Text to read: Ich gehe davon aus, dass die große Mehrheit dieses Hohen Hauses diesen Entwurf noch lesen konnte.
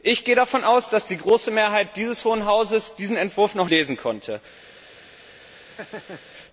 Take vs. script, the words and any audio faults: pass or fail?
fail